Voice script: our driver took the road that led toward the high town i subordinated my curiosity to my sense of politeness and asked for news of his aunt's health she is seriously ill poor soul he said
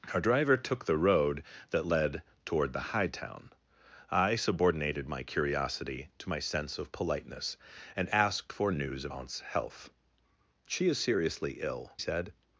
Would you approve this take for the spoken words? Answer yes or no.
no